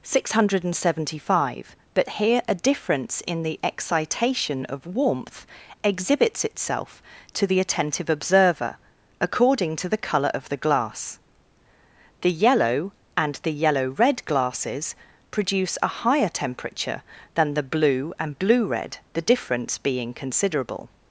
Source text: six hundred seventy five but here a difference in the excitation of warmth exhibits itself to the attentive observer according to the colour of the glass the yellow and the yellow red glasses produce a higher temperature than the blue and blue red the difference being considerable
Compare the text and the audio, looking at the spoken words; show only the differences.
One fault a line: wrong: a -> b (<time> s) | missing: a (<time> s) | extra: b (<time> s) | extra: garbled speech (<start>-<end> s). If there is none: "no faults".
no faults